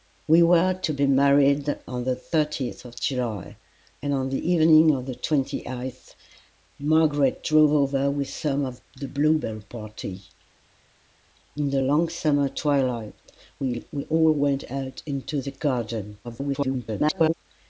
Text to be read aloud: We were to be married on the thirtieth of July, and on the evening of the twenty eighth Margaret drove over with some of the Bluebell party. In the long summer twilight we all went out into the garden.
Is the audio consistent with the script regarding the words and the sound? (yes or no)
no